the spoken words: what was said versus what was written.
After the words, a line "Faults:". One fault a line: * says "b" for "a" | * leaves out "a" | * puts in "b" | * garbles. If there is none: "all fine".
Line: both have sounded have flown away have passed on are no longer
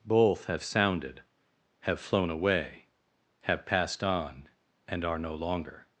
both have sounded have flown away have passed on and are no longer
Faults:
* puts in "and"